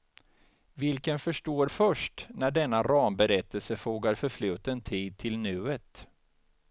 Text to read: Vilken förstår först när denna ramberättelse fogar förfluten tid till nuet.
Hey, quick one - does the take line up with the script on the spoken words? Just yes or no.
yes